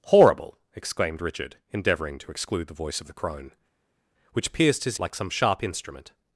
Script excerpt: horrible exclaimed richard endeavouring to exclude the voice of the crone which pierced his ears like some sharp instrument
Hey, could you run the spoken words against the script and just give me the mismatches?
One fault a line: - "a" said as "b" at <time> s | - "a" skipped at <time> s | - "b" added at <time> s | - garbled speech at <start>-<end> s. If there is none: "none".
- "ears" skipped at 5.0 s